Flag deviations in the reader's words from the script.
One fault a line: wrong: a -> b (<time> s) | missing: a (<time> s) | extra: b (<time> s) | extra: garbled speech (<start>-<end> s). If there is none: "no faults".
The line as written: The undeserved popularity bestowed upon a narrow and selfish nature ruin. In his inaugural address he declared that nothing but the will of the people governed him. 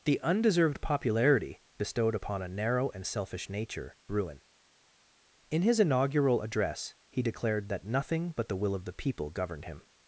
no faults